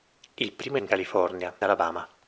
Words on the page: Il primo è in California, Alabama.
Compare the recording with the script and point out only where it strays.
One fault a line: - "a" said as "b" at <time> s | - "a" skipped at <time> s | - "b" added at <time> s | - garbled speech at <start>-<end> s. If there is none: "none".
none